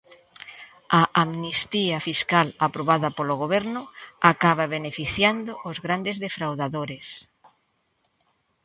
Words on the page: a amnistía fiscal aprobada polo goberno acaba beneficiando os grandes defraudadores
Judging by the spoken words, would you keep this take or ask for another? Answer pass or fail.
pass